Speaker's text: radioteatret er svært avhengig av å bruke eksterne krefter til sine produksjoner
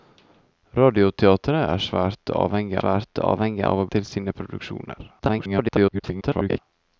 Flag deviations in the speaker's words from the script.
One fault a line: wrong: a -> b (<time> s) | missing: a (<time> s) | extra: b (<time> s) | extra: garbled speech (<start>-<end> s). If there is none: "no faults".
extra: svært avhengig (2.8 s)
missing: bruke eksterne krefter (3.9 s)
extra: garbled speech (5.2-6.6 s)